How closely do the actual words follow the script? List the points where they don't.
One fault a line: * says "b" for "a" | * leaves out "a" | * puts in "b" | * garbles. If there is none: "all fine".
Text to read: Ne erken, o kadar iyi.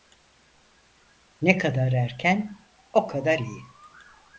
* puts in "kadar"